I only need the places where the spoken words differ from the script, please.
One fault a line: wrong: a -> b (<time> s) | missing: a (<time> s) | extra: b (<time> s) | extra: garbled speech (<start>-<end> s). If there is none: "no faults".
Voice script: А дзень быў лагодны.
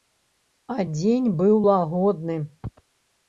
no faults